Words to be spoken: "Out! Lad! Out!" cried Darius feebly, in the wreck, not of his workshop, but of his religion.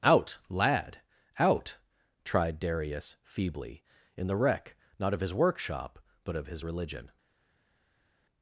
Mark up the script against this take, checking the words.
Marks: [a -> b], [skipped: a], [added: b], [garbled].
"Out! Lad! Out!" [cried -> tried] Darius feebly, in the wreck, not of his workshop, but of his religion.